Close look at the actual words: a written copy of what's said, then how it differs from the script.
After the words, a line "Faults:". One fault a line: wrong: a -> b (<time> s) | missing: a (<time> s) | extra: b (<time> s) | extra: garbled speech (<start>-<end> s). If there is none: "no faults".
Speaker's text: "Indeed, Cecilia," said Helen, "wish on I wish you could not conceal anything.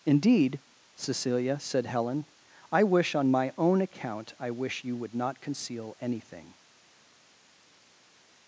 "Indeed, Cecilia," said Helen, "I wish on my own account I wish you would not conceal anything.
Faults:
extra: I (2.7 s)
extra: my own account (3.3 s)
wrong: could -> would (5.0 s)